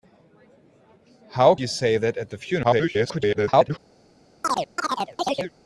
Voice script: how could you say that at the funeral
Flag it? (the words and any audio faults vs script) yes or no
yes